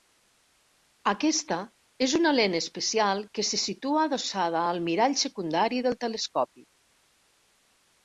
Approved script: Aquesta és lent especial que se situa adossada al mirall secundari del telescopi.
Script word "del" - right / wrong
right